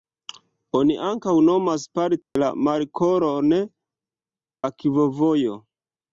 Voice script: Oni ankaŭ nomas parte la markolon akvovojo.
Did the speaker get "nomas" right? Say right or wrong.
right